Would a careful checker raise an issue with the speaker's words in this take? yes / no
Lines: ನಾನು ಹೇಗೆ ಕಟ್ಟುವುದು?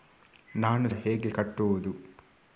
no